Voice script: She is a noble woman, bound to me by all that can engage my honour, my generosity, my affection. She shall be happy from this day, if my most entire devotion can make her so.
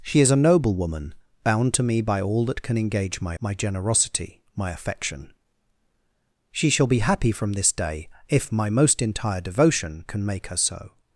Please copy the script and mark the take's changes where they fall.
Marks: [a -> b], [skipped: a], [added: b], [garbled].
She is a noble woman, bound to me by all that can engage my [skipped: honour,] my generosity, my affection. She shall be happy from this day, if my most entire devotion can make her so.